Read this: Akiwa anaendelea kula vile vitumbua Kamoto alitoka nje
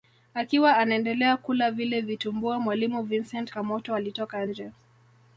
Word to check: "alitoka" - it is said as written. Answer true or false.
true